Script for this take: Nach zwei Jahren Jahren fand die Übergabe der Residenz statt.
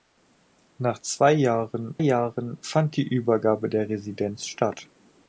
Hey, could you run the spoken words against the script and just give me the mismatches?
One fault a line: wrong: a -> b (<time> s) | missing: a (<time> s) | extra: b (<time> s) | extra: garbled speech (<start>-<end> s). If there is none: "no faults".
no faults